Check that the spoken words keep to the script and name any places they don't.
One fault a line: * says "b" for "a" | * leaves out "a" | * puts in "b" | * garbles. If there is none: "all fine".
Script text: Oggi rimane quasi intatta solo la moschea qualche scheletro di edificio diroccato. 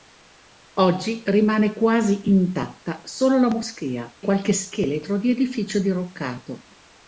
all fine